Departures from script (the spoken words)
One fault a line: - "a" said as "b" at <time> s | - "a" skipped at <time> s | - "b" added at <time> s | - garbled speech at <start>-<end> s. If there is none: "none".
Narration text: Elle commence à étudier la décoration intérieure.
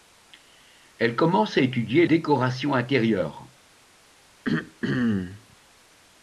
- "la" skipped at 2.1 s